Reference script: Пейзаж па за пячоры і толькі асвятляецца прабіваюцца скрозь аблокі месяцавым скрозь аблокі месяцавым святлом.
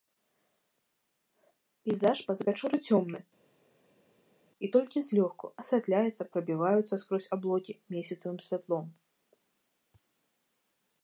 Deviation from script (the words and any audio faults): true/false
true